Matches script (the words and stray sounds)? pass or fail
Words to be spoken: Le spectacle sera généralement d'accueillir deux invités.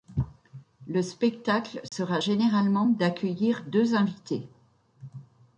fail